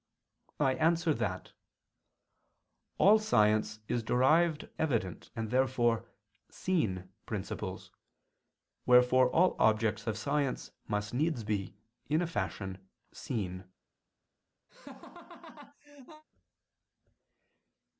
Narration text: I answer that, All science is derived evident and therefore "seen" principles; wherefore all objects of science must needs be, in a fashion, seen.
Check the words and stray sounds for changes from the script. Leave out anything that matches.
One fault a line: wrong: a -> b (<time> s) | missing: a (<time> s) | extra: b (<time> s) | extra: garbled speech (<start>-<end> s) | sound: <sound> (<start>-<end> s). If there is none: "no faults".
sound: laugh (14.7-16.2 s)